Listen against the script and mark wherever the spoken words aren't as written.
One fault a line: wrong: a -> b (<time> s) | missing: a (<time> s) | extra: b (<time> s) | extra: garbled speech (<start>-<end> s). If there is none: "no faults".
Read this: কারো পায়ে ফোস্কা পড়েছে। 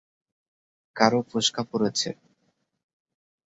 missing: পায়ে (1.2 s)